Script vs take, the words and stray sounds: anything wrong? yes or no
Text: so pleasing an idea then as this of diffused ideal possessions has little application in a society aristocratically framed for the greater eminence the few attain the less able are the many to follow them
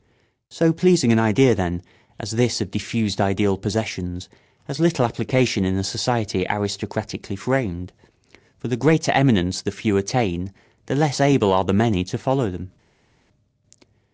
no